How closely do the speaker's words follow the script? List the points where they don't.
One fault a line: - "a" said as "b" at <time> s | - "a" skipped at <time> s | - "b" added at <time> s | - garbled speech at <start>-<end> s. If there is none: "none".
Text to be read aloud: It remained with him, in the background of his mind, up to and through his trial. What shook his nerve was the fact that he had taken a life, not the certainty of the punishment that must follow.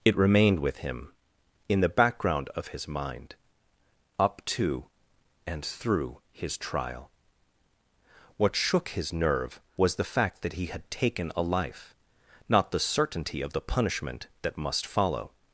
none